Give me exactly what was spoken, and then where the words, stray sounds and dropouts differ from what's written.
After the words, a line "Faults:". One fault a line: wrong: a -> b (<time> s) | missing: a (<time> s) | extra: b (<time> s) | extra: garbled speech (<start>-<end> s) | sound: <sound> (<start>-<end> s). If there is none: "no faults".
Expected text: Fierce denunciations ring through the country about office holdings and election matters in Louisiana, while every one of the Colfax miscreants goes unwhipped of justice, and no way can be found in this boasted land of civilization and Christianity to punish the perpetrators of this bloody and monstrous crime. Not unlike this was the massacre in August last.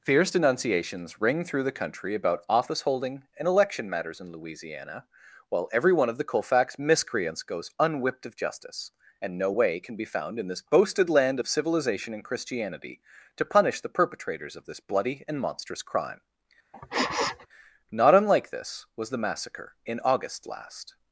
Fierce denunciations ring through the country about office holding and election matters in Louisiana, while every one of the Colfax miscreants goes unwhipped of justice, and no way can be found in this boasted land of civilization and Christianity to punish the perpetrators of this bloody and monstrous crime. Not unlike this was the massacre in August last.
Faults:
wrong: holdings -> holding (2.8 s)
sound: sniff (16.7-17.5 s)